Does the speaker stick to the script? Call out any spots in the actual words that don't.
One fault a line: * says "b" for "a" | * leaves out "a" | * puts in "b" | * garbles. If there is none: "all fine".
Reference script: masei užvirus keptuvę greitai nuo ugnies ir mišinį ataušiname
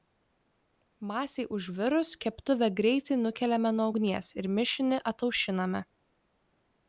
* puts in "nukeliame"